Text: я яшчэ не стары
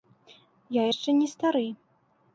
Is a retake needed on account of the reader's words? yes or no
no